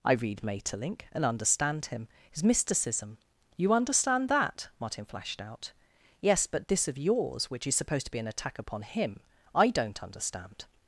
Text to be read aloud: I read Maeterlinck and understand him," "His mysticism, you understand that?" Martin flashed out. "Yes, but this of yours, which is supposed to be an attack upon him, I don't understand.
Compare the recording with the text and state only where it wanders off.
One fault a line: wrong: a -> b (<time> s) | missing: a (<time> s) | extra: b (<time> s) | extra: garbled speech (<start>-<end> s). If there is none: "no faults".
no faults